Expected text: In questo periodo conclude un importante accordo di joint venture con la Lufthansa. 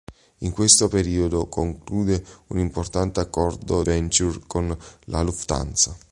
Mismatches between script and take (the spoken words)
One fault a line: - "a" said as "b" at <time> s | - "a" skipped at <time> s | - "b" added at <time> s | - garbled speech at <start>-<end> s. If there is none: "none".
- "di joint" skipped at 3.8 s